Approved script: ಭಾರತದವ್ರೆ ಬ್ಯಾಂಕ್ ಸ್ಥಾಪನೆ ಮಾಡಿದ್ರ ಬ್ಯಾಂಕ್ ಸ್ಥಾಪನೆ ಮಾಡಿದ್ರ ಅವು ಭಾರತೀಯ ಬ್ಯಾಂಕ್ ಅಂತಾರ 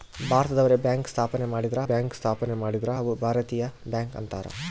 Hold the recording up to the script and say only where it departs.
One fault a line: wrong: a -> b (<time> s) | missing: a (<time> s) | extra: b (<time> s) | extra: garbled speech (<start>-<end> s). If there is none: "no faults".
no faults